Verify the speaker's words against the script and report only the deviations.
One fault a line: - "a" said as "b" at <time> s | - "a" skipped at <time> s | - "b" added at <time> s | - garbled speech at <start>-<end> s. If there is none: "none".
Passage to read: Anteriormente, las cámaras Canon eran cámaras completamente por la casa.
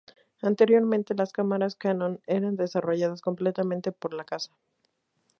- "cámaras" said as "desarrolladas" at 2.5 s